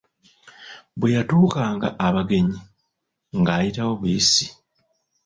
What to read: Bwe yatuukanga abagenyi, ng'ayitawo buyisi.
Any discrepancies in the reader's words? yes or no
no